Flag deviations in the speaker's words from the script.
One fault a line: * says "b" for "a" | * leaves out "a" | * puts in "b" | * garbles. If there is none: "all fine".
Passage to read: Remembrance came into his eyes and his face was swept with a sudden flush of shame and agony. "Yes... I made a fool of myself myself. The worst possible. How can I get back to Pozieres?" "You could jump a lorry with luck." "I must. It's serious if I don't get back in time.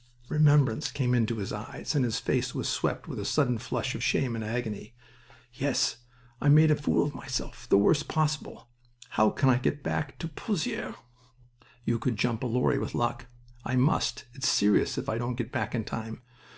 * leaves out "myself"